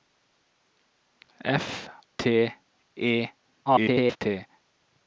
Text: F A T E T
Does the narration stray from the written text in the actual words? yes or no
yes